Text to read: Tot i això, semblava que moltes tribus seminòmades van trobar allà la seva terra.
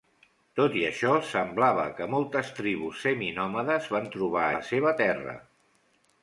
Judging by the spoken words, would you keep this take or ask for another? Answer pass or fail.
fail